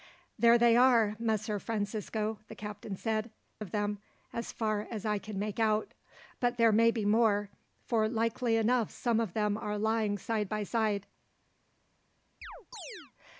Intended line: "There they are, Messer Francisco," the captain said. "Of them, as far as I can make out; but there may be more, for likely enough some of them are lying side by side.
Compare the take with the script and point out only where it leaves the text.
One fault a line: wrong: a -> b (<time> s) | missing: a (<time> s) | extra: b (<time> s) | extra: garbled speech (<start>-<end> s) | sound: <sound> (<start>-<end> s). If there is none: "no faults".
sound: chirp (12.4-13.1 s)